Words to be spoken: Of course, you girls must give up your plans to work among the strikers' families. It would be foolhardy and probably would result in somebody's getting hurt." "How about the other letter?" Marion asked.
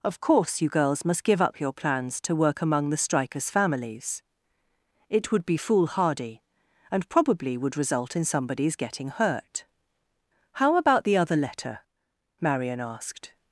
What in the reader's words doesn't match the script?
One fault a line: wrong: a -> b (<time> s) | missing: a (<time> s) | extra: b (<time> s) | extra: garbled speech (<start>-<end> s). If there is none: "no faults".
no faults